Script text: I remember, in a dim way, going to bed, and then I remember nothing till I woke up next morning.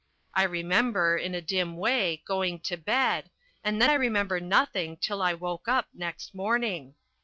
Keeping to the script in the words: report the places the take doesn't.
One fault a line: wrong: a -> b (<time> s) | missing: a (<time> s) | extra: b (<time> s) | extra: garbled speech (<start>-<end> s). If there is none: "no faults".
no faults